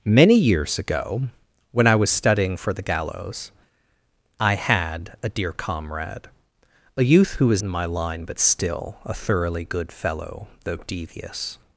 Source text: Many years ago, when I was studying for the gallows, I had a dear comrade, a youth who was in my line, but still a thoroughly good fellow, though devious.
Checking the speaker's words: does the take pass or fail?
pass